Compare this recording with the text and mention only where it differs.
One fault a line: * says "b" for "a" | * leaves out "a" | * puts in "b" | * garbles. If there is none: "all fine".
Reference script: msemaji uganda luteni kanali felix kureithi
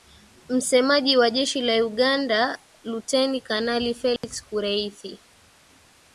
* puts in "wa jeshi la"